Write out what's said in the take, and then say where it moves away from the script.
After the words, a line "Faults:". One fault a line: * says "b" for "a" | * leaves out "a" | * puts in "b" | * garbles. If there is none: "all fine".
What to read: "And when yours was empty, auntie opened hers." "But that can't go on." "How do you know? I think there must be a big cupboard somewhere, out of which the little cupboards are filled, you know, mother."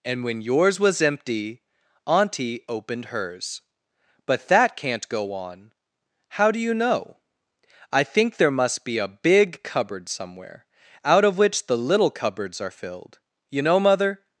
"And when yours was empty, auntie opened hers." "But that can't go on." "How do you know? I think there must be a big cupboard somewhere, out of which the little cupboards are filled, you know, mother."
Faults:
all fine